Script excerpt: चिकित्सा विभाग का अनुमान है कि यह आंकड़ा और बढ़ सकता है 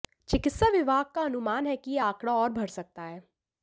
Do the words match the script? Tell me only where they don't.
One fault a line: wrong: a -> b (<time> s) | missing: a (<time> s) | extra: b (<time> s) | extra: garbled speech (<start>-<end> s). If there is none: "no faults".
no faults